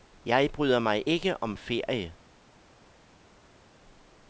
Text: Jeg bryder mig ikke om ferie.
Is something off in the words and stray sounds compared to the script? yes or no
no